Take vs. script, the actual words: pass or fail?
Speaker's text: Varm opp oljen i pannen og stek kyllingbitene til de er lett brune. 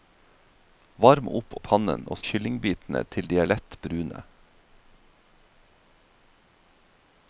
fail